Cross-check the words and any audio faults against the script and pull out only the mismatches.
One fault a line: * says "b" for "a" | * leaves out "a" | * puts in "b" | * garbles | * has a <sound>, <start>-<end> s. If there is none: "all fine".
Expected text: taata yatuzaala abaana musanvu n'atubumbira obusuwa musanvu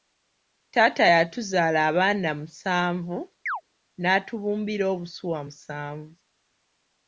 * has a chirp, 3.5-3.6 s